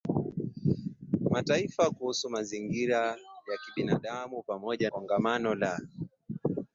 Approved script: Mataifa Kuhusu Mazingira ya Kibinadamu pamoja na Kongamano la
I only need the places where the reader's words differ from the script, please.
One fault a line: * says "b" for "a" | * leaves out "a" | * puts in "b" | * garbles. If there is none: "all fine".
* leaves out "na"